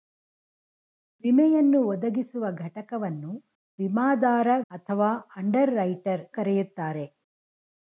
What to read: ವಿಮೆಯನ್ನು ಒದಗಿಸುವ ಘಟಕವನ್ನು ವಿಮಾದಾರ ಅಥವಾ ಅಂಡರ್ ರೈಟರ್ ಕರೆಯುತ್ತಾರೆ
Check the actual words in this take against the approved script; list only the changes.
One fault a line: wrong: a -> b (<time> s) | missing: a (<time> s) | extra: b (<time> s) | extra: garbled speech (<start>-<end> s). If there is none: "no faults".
no faults